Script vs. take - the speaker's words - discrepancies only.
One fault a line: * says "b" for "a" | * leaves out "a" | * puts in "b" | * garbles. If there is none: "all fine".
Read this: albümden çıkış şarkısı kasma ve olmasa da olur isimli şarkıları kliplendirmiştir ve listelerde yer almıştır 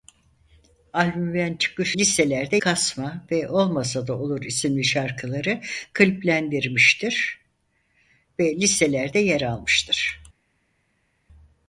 * says "listelerde" for "şarkısı"